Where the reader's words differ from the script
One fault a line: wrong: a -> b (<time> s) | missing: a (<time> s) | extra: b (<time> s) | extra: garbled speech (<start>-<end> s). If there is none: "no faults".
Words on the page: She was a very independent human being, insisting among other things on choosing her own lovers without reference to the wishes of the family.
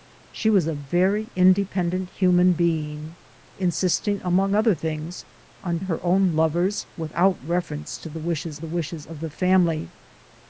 missing: choosing (5.8 s)
extra: the wishes (8.6 s)